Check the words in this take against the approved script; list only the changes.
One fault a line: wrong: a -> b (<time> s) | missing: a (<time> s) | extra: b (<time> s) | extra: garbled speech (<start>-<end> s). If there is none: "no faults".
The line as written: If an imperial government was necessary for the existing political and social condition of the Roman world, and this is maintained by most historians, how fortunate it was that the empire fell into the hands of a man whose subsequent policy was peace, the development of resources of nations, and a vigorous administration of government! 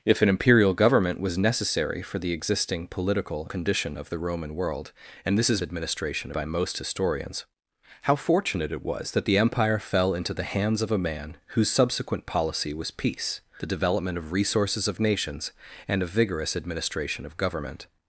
missing: and social (3.5 s)
wrong: maintained -> administration (5.6 s)